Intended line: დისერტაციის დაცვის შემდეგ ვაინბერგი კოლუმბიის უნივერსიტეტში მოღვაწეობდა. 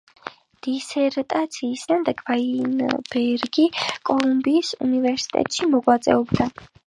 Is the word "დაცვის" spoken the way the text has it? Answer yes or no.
no